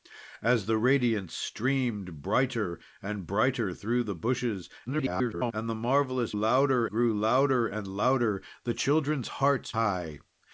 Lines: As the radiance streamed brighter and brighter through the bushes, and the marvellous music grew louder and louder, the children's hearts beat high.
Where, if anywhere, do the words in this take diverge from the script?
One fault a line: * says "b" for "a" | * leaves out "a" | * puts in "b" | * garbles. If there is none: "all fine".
* garbles
* says "louder" for "music"
* leaves out "beat"